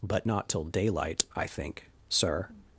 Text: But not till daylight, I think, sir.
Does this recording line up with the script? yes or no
yes